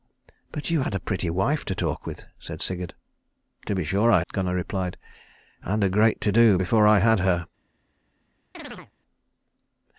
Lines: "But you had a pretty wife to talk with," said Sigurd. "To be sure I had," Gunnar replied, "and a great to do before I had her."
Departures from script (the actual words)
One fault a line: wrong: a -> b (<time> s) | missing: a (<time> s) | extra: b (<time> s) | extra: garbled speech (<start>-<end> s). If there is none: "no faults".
missing: had (4.2 s)